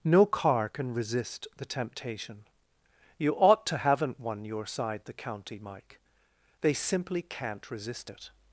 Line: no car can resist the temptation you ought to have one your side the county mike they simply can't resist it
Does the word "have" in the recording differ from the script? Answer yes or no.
yes